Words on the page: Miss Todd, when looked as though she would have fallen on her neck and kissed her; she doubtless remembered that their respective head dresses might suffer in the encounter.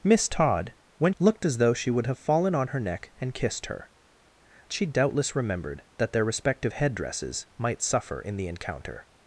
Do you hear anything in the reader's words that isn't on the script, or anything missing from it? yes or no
no